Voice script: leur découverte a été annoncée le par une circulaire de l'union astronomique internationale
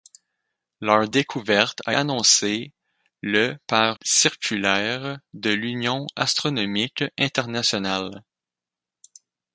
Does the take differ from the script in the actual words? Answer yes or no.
yes